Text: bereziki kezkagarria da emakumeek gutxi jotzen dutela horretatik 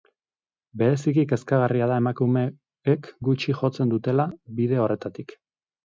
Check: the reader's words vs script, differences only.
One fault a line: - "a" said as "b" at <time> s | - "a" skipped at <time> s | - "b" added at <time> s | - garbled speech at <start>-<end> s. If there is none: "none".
- "bide" added at 4.6 s